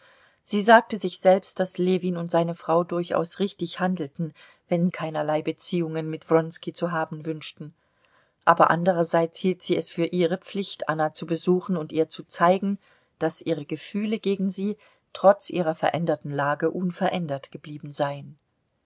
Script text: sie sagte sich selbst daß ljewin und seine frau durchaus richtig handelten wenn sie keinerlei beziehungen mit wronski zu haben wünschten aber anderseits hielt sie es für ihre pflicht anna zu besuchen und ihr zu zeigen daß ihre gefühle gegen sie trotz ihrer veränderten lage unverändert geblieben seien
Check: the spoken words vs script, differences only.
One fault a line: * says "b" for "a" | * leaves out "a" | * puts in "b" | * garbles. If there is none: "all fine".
* leaves out "sie"